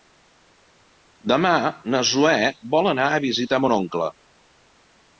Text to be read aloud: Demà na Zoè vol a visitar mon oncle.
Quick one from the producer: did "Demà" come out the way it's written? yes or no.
yes